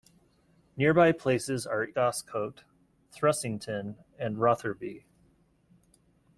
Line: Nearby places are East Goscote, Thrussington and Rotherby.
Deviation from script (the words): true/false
true